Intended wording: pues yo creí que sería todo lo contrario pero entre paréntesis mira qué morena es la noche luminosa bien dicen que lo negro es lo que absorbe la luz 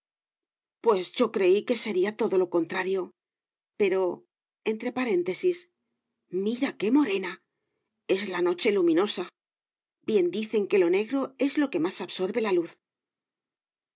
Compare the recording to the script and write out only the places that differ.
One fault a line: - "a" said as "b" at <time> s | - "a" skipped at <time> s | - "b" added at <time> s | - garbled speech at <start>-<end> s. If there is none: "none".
- "más" added at 11.8 s